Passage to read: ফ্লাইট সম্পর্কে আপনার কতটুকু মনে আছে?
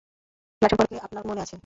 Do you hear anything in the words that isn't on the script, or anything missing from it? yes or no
yes